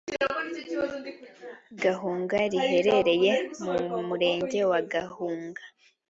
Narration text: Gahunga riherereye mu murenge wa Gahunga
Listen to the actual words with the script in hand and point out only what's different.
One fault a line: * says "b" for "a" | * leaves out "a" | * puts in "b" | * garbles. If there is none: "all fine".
all fine